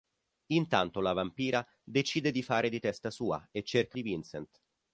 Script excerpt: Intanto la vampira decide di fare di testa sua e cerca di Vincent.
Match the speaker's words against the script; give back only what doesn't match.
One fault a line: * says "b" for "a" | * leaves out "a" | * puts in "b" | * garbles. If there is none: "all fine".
all fine